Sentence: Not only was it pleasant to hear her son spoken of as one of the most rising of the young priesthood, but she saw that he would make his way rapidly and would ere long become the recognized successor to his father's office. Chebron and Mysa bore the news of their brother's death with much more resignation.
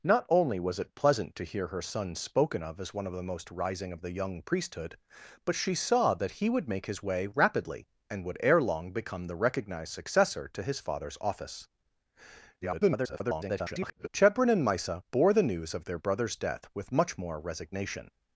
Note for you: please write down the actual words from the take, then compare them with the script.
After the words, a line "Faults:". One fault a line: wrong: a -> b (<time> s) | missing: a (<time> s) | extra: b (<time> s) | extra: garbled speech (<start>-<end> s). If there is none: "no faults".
Not only was it pleasant to hear her son spoken of as one of the most rising of the young priesthood, but she saw that he would make his way rapidly and would ere long become the recognized successor to his father's office. [garbled] Chebron and Mysa bore the news of their brother's death with much more resignation.
Faults:
extra: garbled speech (12.6-14.1 s)